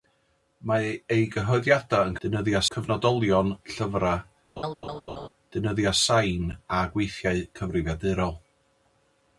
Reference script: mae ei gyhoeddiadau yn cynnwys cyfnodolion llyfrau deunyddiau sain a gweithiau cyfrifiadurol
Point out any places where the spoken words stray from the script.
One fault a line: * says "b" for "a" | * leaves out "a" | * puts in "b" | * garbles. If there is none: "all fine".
* says "deunyddiau" for "cynnwys"